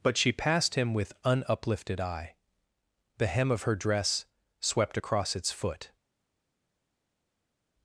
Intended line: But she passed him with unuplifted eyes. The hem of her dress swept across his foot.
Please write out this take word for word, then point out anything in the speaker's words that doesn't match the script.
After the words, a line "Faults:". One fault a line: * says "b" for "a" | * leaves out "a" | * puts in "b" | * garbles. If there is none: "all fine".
But she passed him with unuplifted eye. The hem of her dress swept across its foot.
Faults:
* says "eye" for "eyes"
* says "its" for "his"